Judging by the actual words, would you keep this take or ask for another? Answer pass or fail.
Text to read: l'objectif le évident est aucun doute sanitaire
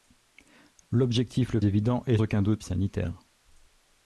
pass